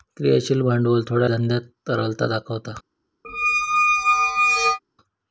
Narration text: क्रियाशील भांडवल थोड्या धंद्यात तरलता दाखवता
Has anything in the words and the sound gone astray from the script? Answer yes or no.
yes